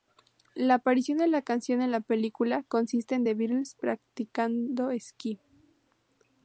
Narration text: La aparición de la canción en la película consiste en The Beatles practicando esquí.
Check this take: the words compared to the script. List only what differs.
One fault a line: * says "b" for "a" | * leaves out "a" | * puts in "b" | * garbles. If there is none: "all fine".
all fine